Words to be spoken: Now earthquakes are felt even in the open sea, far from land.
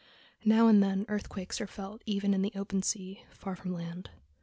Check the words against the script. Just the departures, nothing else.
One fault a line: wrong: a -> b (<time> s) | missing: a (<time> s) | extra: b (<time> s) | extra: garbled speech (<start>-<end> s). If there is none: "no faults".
extra: and then (0.7 s)